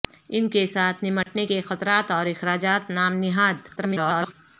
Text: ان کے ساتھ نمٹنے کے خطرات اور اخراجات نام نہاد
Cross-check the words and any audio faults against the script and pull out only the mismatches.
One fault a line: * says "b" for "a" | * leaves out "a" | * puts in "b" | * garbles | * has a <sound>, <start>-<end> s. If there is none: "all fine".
* has a dropout, 1.2-1.3 s
* garbles